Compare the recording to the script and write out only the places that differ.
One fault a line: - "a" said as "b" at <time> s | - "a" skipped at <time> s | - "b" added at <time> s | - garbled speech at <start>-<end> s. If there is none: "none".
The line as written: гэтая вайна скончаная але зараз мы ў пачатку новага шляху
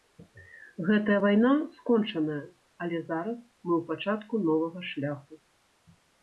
none